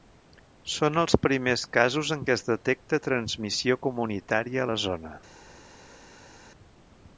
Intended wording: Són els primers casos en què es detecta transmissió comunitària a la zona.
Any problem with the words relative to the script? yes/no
no